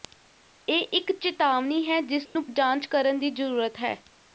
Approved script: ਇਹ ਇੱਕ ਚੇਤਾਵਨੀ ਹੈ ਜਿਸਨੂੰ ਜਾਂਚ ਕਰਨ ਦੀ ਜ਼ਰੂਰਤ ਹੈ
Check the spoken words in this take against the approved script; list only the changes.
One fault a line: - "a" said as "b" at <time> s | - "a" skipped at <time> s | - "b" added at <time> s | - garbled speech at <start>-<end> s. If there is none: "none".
none